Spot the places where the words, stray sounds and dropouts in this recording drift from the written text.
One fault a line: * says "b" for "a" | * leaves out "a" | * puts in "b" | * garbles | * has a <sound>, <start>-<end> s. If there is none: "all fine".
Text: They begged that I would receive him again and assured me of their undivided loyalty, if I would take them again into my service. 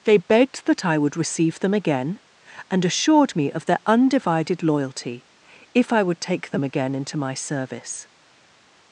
* says "them" for "him"